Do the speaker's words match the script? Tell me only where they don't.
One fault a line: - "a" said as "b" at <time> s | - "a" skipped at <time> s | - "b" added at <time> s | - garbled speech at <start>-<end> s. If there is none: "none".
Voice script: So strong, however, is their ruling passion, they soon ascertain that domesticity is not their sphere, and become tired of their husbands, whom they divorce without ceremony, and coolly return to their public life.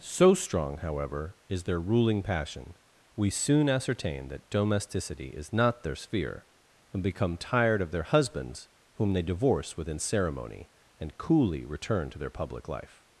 - "they" said as "we" at 3.1 s
- "without" said as "within" at 9.8 s